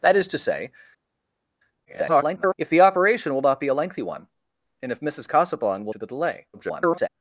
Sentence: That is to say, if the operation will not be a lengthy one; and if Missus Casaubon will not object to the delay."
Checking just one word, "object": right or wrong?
wrong